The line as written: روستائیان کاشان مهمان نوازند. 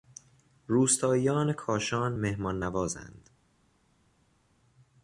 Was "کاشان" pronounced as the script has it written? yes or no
yes